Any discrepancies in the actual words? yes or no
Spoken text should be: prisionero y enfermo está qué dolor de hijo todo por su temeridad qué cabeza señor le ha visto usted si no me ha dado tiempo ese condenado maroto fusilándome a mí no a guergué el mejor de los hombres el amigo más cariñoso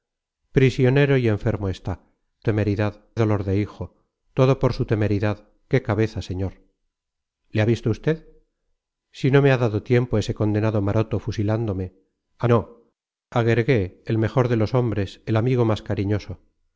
yes